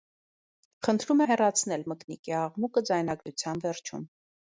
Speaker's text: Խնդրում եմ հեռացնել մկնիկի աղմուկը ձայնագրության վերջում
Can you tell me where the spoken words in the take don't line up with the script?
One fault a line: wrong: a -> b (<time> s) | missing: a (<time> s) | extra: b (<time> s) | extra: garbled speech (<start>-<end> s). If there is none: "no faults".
missing: եմ (1.2 s)